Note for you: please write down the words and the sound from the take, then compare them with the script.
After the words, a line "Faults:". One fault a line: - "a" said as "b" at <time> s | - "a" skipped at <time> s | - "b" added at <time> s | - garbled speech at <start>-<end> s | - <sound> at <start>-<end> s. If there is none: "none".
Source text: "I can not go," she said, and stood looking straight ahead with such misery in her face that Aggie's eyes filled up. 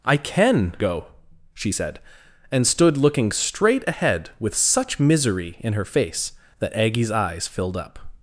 "I can go," she said, and stood looking straight ahead with such misery in her face that Aggie's eyes filled up.
Faults:
- "not" skipped at 0.8 s